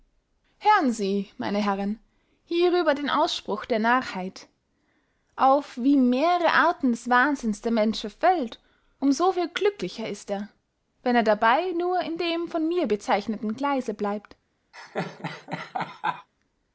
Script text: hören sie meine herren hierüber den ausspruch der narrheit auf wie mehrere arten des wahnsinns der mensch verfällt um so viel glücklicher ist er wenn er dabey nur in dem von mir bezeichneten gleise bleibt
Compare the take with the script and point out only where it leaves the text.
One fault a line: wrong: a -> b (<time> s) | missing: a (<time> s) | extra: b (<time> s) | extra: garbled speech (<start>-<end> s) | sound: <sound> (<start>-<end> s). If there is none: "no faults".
sound: laugh (14.7-16.3 s)